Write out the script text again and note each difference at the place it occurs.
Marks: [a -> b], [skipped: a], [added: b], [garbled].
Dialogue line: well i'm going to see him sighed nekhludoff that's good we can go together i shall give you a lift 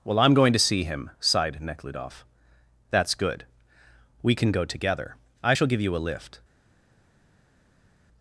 well i'm going to see him sighed nekhludoff that's good we can go together i shall give you a lift